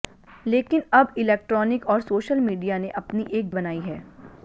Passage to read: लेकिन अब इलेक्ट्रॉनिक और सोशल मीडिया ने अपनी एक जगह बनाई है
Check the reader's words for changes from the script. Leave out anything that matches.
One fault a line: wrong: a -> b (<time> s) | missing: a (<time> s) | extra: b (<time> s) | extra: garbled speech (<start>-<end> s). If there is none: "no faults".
missing: जगह (3.5 s)